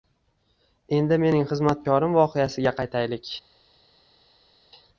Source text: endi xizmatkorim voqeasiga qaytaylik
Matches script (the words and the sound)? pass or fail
fail